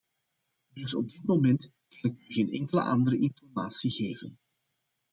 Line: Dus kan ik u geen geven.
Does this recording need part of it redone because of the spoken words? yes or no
yes